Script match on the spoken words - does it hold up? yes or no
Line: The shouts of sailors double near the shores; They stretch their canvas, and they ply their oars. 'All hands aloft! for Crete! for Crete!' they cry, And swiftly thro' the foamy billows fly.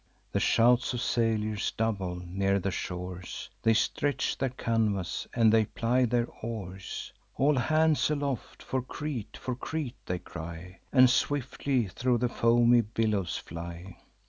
yes